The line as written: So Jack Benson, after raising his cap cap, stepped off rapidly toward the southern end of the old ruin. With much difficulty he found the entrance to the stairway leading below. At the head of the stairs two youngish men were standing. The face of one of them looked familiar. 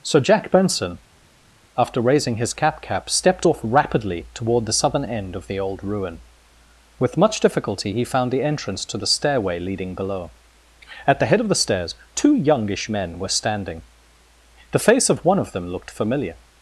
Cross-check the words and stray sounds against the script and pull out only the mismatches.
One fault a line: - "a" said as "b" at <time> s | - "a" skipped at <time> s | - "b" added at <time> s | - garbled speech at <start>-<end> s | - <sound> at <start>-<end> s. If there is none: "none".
none